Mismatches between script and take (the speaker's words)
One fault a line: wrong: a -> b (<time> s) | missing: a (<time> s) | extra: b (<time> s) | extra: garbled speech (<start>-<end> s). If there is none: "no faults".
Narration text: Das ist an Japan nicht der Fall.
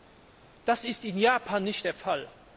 wrong: an -> in (1.0 s)